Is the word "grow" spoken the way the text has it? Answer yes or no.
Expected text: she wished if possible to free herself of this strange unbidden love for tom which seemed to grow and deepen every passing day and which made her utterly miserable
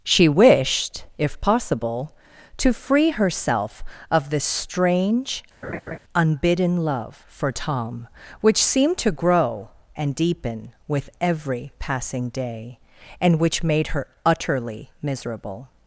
yes